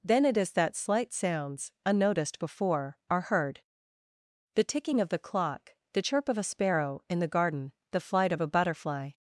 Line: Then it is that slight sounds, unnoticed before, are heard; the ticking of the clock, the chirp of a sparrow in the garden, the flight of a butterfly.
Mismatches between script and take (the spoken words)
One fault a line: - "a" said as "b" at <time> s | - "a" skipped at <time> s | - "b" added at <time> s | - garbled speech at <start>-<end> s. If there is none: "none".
none